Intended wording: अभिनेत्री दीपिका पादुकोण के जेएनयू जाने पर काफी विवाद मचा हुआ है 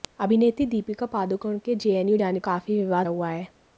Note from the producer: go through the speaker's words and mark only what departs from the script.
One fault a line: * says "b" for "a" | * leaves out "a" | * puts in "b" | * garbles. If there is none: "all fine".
* leaves out "पर"
* leaves out "मचा"